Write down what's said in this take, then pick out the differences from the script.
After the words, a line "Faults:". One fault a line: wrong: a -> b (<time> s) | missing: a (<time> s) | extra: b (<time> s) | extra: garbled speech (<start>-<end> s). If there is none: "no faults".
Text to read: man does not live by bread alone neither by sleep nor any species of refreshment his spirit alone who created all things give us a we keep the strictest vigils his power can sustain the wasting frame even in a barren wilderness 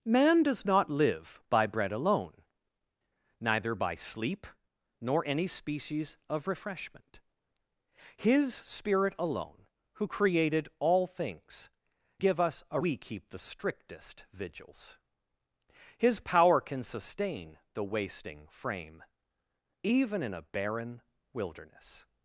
man does not live by bread alone neither by sleep nor any species of refreshment his spirit alone who created all things give us a we keep the strictest vigils his power can sustain the wasting frame even in a barren wilderness
Faults:
no faults